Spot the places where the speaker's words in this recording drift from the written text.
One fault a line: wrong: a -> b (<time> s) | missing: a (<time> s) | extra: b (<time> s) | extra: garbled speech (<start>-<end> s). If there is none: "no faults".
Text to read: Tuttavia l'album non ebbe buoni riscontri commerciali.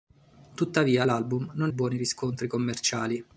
missing: ebbe (1.7 s)